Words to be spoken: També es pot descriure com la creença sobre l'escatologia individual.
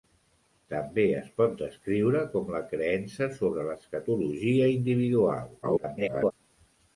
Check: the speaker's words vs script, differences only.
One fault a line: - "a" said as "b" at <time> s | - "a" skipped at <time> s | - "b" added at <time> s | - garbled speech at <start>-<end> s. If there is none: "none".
- garbled speech at 5.6-6.3 s